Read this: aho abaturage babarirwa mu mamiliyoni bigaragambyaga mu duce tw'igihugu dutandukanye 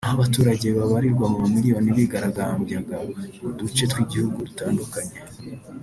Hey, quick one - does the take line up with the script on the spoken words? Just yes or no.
yes